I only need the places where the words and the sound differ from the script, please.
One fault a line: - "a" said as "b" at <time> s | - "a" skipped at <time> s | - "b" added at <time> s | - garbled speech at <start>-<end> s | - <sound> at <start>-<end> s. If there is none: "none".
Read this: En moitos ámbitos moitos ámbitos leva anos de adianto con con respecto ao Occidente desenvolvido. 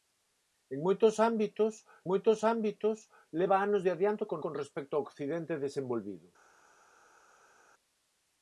none